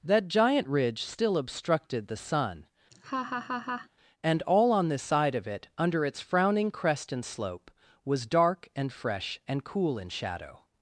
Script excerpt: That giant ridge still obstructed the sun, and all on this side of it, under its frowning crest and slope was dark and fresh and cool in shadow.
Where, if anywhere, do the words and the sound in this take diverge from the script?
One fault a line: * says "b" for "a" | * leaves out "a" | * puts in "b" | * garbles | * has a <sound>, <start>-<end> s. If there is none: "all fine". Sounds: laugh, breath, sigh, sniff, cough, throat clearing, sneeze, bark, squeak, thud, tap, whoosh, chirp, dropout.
* has a laugh, 2.9-3.9 s